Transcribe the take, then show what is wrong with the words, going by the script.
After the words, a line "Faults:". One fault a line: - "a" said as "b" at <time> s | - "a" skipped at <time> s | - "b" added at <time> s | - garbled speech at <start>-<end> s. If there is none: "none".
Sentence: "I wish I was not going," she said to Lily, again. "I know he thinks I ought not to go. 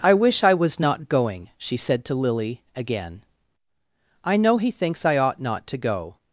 "I wish I was not going," she said to Lily, again. "I know he thinks I ought not to go.
Faults:
none